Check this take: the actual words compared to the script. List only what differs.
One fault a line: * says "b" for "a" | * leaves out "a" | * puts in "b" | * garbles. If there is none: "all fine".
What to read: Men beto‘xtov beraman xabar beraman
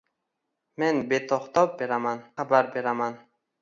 all fine